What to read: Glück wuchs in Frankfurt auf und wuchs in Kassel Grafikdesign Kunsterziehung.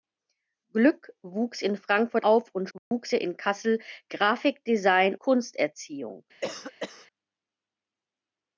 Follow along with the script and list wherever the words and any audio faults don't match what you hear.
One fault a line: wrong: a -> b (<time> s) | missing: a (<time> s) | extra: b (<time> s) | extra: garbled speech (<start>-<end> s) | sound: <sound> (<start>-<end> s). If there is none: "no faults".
sound: dropout (2.8-2.9 s)
sound: cough (6.4-7.1 s)